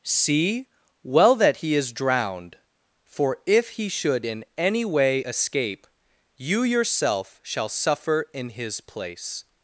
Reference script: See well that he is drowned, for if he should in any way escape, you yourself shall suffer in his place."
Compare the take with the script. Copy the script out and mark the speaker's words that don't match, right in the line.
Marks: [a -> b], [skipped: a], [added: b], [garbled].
See well that he is drowned, for if he should in any way escape, you yourself shall suffer in his place."